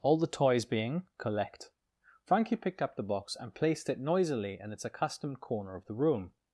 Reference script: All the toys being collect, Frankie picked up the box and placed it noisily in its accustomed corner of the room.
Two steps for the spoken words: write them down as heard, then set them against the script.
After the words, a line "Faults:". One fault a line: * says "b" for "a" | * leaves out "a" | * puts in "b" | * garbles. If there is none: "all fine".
All the toys being collect, Frankie picked up the box and placed it noisily in its accustomed corner of the room.
Faults:
all fine